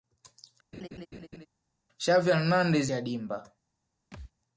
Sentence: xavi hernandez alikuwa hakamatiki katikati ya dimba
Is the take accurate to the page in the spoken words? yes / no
no